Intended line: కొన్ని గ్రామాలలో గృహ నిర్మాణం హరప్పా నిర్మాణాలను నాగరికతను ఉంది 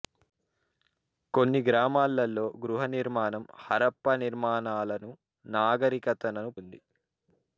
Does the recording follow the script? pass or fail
pass